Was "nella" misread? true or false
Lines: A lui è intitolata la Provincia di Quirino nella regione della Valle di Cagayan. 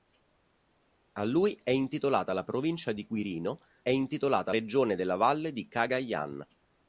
true